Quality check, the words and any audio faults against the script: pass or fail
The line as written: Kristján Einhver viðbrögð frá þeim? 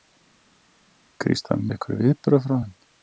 pass